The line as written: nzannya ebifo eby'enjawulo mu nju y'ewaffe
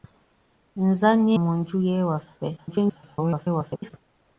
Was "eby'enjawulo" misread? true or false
true